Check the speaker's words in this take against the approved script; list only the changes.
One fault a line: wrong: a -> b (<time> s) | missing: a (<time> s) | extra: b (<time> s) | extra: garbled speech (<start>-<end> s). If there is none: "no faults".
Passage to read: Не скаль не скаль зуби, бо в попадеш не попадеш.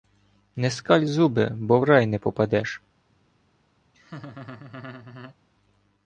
missing: не скаль (1.1 s)
wrong: попадеш -> рай (1.8 s)